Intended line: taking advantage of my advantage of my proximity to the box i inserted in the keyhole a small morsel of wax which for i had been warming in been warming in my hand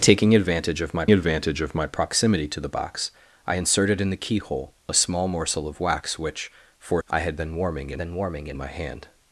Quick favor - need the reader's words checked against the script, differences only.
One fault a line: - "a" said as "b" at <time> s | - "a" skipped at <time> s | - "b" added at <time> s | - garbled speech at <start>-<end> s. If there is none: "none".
none